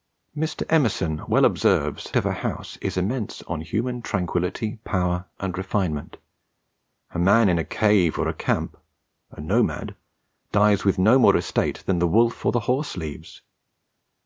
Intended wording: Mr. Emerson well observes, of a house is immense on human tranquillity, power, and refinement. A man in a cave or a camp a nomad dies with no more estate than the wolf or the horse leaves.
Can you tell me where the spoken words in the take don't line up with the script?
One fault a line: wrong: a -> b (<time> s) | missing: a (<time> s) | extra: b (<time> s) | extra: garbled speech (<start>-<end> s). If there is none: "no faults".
no faults